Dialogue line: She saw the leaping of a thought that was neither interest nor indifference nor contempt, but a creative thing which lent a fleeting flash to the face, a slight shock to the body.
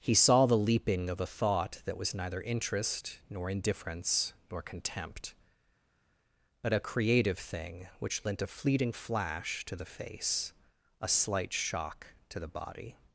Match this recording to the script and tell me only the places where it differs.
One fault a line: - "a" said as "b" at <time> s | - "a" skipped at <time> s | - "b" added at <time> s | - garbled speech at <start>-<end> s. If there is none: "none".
- "She" said as "He" at 0.0 s